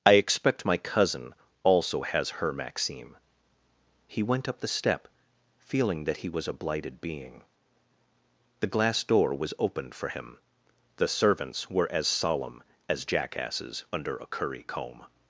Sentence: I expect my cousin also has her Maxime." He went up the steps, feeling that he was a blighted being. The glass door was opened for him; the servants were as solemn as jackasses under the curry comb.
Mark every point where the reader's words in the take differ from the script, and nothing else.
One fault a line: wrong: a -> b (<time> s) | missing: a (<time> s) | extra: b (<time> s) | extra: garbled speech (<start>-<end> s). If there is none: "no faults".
wrong: steps -> step (4.7 s)
wrong: the -> a (14.2 s)